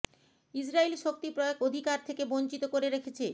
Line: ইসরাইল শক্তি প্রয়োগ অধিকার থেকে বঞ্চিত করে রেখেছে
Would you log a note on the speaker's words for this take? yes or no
no